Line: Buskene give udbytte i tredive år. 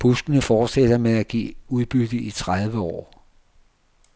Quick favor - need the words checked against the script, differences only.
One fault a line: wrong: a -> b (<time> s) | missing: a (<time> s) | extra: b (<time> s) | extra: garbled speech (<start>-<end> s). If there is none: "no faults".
extra: fortsætter med at (0.4 s)